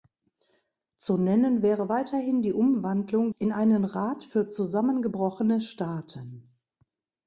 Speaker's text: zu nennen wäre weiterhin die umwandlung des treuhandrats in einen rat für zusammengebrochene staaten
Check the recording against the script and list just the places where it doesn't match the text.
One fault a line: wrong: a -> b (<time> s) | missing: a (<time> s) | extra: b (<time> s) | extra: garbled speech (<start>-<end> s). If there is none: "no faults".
missing: des treuhandrats (3.3 s)